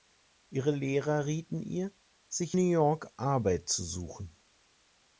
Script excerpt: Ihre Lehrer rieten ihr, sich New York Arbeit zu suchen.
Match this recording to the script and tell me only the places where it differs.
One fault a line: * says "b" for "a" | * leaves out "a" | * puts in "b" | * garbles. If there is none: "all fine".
all fine